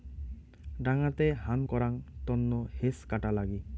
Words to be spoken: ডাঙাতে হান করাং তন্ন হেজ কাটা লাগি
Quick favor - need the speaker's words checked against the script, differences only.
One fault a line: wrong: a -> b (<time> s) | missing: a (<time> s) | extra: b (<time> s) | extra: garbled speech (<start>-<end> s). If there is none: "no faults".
no faults